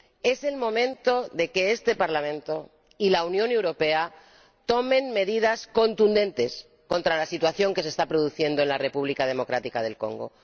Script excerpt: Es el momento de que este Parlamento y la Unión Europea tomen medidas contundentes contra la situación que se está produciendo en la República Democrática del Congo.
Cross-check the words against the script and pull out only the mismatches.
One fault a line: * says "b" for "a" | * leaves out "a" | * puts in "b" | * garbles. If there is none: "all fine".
all fine